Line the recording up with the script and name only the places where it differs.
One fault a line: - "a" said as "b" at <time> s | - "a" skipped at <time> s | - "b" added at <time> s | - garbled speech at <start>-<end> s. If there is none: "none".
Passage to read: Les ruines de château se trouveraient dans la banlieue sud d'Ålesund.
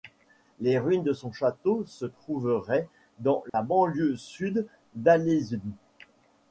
- "son" added at 1.1 s